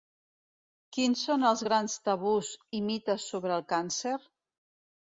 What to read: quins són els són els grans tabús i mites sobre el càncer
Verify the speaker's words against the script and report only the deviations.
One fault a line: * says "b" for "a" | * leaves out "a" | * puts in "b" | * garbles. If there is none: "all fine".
* leaves out "són els"